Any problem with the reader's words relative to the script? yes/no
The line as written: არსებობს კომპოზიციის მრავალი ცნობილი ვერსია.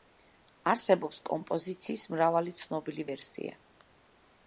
no